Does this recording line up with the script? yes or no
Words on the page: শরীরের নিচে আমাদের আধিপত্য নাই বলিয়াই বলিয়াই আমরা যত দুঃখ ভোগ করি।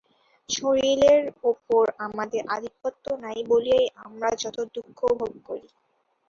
no